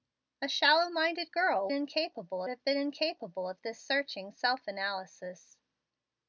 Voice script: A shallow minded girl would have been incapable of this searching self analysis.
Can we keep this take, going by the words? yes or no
no